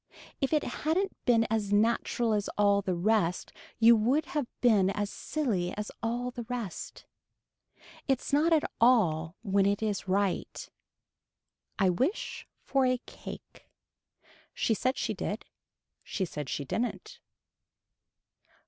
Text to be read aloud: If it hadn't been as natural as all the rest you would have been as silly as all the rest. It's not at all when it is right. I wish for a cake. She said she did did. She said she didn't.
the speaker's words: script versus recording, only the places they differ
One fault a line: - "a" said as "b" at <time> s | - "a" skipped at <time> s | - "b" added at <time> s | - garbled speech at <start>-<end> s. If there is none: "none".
- "did" skipped at 15.4 s